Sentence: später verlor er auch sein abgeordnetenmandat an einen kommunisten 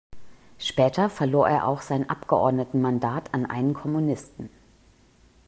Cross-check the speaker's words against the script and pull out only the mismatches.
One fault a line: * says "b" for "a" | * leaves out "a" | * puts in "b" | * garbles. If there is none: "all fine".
all fine